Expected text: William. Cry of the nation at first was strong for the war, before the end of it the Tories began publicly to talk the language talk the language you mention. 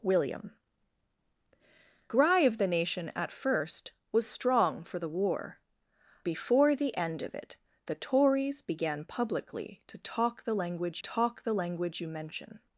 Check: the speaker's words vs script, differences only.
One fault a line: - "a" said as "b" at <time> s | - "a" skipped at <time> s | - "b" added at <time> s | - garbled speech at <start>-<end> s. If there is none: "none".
none